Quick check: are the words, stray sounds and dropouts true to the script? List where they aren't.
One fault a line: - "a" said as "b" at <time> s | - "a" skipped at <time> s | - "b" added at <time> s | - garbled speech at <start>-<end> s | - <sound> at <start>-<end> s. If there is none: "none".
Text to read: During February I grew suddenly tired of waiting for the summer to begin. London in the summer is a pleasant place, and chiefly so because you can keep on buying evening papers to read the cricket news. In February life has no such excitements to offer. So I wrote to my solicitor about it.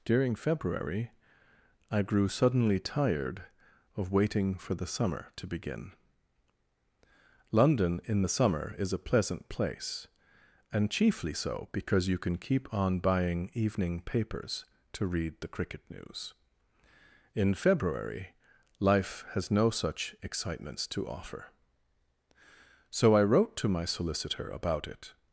none